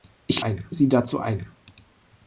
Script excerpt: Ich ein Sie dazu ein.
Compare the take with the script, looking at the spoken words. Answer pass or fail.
pass